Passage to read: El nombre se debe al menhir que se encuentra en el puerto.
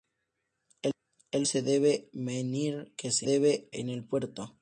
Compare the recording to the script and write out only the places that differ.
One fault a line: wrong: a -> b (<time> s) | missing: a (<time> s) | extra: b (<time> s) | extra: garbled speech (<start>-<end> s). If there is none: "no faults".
missing: nombre (1.5 s)
missing: al (2.1 s)
wrong: encuentra -> debe (3.2 s)